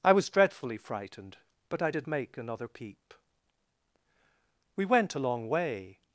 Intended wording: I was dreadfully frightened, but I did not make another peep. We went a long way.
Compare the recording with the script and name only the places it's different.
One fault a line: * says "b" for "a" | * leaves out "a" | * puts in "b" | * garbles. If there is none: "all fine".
* leaves out "not"